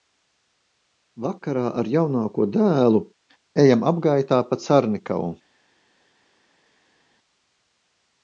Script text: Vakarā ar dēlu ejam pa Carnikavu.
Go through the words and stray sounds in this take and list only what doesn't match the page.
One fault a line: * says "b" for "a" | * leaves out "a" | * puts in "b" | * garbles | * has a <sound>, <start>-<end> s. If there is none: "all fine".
* puts in "jaunāko"
* puts in "apgaitā"